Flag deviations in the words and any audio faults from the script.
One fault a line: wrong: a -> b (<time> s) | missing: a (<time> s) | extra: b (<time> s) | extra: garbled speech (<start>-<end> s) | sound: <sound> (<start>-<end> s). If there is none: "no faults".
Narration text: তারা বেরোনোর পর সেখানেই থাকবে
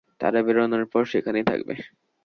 no faults